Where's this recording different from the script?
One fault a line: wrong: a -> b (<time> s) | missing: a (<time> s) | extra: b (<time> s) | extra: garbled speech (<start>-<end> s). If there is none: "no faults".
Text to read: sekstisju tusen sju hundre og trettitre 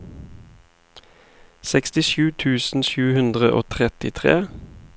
no faults